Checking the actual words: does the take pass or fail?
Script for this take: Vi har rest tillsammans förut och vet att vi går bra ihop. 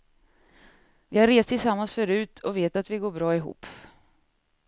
pass